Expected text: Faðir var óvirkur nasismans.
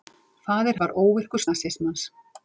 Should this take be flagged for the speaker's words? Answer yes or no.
no